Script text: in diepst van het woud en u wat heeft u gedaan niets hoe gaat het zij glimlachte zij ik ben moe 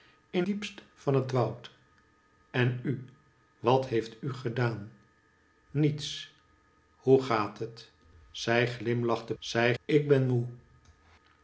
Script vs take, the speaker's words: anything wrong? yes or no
no